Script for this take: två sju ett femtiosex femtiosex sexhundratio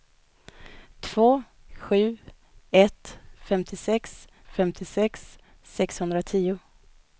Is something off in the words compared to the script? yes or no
no